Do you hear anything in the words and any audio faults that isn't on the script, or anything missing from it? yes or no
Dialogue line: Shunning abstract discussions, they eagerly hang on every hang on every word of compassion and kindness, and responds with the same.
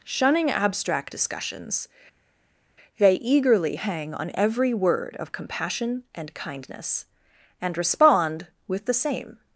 yes